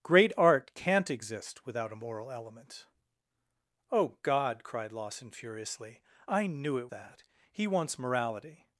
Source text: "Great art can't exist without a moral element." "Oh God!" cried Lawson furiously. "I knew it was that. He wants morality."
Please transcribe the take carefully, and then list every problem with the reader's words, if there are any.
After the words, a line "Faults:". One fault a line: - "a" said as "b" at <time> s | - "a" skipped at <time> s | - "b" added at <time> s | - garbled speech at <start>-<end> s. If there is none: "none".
"Great art can't exist without a moral element." "Oh God!" cried Lawson furiously. "I knew it that. He wants morality."
Faults:
- "was" skipped at 6.9 s